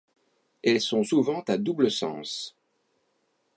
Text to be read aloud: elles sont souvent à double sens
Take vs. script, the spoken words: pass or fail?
pass